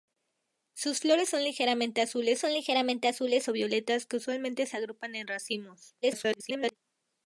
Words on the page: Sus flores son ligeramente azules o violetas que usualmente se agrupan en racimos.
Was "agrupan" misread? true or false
false